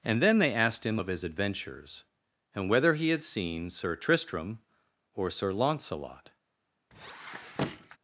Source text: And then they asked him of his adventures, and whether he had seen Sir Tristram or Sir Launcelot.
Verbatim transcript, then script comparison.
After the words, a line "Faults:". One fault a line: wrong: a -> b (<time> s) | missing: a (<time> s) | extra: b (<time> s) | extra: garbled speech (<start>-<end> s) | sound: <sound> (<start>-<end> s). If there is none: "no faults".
And then they asked him of his adventures, and whether he had seen Sir Tristram or Sir Launcelot.
Faults:
sound: squeak (6.9-8.0 s)